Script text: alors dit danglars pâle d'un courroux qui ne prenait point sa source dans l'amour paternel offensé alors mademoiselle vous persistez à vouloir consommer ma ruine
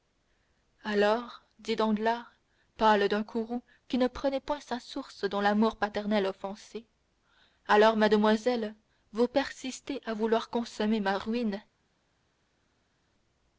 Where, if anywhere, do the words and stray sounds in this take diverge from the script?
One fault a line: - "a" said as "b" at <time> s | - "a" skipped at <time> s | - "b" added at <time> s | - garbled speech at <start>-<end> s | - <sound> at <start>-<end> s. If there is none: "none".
none